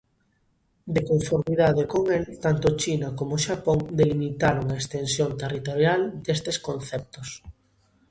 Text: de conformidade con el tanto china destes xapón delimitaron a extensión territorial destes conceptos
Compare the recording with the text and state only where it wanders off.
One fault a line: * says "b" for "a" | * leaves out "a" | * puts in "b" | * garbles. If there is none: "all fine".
* says "como" for "destes"